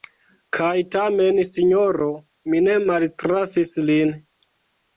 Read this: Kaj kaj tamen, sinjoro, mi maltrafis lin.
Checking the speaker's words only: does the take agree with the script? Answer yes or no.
no